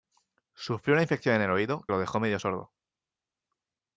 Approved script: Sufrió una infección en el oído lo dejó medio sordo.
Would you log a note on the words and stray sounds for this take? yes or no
no